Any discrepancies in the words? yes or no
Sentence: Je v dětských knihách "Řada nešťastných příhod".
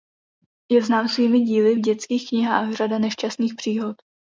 yes